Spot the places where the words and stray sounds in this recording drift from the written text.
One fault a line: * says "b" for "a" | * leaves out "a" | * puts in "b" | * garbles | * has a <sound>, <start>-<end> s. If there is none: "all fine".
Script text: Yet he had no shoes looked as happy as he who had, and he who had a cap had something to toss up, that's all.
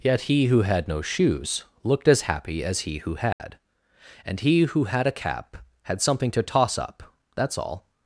* puts in "who"
* has a dropout, 3.3-3.4 s